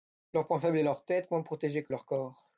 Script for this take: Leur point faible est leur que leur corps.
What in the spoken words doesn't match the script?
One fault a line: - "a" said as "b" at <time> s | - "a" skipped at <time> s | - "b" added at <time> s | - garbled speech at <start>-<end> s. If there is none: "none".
- "tête moins protégée" added at 1.1 s